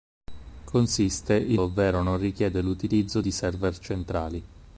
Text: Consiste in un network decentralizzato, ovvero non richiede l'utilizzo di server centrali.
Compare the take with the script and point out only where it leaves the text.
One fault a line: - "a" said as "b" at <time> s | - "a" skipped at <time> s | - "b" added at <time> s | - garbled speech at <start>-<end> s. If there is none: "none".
- "un network decentralizzato" skipped at 1.6 s